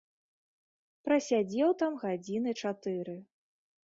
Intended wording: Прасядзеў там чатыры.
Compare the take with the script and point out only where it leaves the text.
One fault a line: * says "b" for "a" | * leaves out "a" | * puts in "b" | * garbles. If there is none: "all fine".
* puts in "гадзіны"